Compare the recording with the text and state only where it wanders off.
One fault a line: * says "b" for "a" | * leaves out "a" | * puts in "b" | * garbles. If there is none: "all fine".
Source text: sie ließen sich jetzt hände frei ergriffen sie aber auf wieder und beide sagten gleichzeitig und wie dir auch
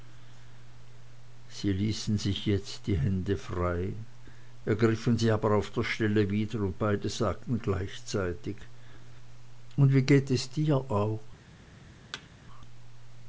* puts in "die"
* puts in "der stelle"
* puts in "geht es"